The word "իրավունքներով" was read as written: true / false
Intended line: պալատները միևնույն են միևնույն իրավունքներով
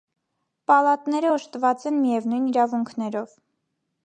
true